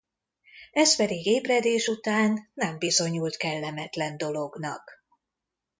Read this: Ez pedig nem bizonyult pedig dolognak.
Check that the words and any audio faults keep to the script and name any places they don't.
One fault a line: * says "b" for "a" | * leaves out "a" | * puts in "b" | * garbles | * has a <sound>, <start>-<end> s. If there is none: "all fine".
* puts in "ébredés után"
* says "kellemetlen" for "pedig"